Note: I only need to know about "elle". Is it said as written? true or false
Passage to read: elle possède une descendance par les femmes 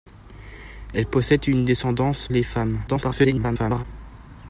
true